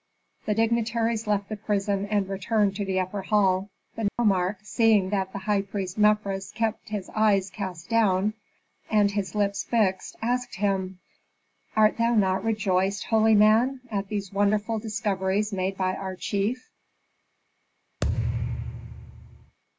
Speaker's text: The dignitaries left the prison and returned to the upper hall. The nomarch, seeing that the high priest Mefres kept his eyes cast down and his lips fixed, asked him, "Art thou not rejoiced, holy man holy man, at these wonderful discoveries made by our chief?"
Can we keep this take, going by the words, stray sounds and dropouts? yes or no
no